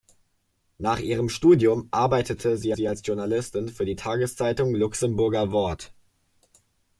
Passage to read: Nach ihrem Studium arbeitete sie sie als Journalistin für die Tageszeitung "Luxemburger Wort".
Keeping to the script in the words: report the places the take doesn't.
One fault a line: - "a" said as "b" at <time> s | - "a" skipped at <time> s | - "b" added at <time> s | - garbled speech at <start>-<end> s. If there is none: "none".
none